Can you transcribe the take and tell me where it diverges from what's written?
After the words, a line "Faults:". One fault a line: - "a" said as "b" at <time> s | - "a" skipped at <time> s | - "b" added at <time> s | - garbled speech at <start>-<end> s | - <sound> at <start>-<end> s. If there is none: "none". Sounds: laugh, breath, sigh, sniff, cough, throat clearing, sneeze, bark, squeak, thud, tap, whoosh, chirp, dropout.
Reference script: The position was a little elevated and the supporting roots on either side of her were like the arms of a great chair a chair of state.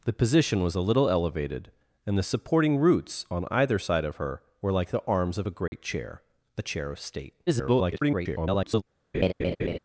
The position was a little elevated and the supporting roots on either side of her were like the arms of a great chair a chair of state. [garbled]
Faults:
- dropout at 5.7-5.7 s
- garbled speech at 7.5-8.8 s
- laugh at 9.1-9.8 s